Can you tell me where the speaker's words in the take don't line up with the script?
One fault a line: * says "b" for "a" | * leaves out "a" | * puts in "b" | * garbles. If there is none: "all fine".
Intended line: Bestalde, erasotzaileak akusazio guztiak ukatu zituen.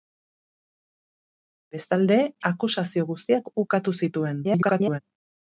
* leaves out "erasotzaileak"
* garbles